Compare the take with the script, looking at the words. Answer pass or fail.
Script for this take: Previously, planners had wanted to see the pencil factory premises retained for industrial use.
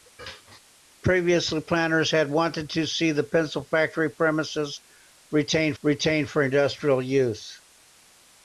fail